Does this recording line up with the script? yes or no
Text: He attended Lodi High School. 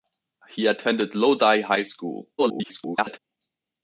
no